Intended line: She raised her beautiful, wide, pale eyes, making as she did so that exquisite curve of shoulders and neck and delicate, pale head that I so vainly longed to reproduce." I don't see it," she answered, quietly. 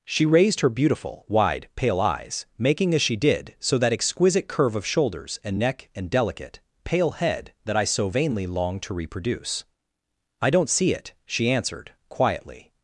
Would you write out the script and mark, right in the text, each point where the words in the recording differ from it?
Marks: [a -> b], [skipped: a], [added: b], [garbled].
She raised her beautiful, wide, pale eyes, making as she did so that exquisite curve of shoulders and neck and delicate, pale head that I so vainly longed to reproduce." I don't see it," she answered, quietly.